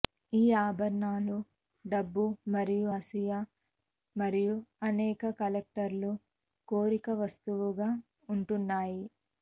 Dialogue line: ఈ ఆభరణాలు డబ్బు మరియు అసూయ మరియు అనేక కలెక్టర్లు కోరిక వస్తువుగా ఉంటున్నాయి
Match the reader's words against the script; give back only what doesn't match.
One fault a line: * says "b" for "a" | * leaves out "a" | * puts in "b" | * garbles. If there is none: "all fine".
all fine